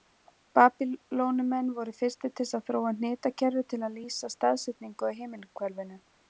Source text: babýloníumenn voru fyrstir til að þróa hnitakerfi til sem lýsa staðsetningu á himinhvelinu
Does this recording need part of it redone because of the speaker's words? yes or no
yes